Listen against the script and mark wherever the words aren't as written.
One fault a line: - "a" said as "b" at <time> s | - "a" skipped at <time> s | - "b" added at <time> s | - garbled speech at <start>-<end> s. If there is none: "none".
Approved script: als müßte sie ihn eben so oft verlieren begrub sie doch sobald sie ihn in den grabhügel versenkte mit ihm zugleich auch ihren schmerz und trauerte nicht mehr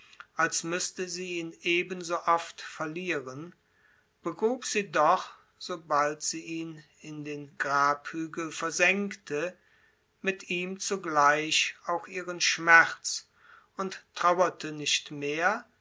none